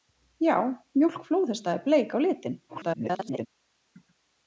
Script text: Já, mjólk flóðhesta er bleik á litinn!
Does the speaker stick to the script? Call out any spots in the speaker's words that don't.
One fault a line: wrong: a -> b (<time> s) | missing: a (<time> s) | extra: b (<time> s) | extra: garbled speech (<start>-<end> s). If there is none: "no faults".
extra: garbled speech (2.7-3.5 s)